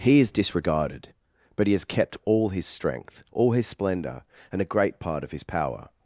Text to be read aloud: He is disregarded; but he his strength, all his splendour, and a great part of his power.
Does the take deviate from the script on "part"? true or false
false